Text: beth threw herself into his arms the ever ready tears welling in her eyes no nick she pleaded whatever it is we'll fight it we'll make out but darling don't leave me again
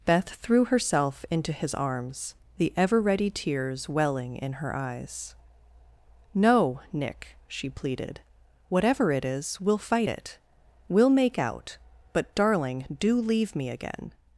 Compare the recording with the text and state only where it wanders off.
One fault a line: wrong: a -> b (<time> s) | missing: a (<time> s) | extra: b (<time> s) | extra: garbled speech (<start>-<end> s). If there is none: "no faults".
wrong: don't -> do (13.0 s)